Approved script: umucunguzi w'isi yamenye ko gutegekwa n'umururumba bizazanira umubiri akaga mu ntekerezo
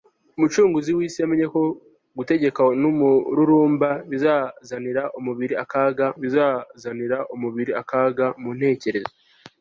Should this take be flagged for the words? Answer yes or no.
yes